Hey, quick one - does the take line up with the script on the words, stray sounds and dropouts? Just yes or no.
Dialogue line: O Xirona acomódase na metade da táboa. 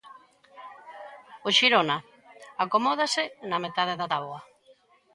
yes